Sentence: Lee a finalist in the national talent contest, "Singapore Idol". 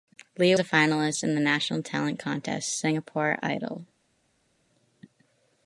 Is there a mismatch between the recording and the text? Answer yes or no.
no